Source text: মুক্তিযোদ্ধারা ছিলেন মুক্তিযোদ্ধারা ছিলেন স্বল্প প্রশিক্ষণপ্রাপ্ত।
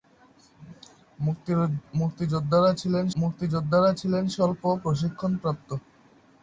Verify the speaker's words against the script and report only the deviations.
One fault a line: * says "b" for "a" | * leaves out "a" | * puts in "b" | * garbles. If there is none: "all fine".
all fine